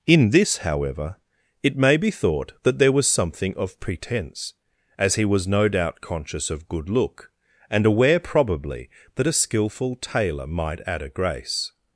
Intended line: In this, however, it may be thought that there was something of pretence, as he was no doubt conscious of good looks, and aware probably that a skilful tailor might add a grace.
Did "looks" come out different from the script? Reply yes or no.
yes